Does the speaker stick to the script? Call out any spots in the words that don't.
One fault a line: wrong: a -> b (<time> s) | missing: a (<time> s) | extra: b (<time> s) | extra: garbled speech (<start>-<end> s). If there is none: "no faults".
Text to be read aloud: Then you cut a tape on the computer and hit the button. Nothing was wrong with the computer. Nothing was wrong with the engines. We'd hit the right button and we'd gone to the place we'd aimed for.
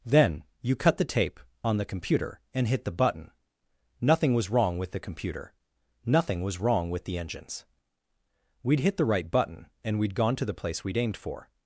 wrong: a -> the (1.0 s)